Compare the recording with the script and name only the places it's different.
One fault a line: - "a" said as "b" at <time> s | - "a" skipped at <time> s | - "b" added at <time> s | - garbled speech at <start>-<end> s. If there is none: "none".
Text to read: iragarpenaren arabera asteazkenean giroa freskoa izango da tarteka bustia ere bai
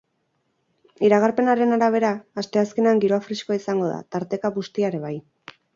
none